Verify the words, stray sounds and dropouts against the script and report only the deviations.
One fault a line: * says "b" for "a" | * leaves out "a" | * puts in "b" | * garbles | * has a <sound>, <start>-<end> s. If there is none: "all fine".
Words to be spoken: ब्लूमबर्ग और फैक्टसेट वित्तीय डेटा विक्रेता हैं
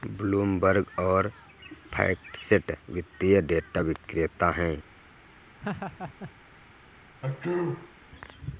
* has a laugh, 5.6-6.3 s
* has a sneeze, 7.2-7.9 s